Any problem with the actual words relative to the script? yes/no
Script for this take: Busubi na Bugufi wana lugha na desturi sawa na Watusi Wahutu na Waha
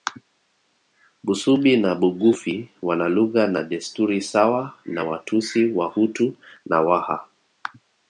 no